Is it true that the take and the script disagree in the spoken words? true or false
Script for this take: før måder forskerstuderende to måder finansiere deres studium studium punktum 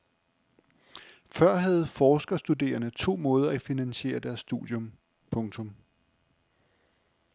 true